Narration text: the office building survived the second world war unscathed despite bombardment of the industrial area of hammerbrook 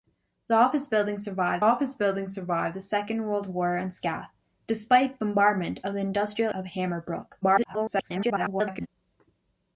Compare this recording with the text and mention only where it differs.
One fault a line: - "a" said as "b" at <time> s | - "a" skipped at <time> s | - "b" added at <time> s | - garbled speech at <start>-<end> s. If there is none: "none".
- "office building survived" added at 1.6 s
- "area" skipped at 6.5 s
- garbled speech at 7.4-8.9 s